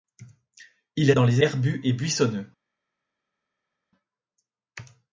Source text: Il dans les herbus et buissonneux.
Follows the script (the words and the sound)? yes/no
yes